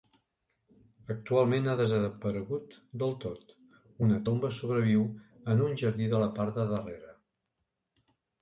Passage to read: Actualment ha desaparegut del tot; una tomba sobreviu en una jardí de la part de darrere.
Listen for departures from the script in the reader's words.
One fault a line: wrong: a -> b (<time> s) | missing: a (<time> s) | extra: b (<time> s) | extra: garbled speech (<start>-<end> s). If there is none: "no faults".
wrong: una -> un (5.7 s)